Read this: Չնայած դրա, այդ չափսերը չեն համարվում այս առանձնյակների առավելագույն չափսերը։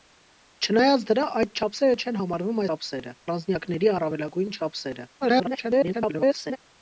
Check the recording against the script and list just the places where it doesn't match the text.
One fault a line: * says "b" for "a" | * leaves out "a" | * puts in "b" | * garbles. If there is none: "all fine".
* says "չափսերը" for "այս"
* garbles